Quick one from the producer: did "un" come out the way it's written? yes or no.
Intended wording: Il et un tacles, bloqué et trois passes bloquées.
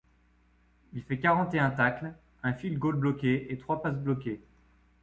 yes